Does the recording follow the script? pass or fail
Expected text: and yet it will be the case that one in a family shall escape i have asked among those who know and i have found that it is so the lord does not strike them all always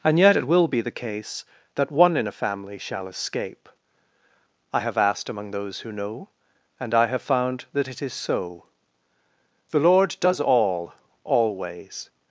fail